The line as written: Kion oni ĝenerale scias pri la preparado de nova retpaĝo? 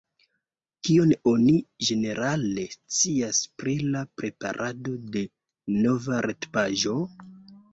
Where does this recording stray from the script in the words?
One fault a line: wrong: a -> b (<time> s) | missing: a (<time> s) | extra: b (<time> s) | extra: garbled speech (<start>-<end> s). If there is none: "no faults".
no faults